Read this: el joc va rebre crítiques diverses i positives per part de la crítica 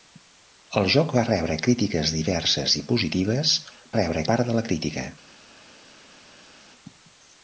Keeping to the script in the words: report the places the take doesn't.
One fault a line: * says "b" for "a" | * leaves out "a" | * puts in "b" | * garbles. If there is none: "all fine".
* says "rebre" for "per"